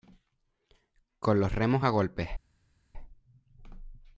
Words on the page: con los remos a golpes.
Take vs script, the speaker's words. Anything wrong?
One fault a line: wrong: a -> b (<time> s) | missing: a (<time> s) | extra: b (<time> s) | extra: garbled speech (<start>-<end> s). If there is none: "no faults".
no faults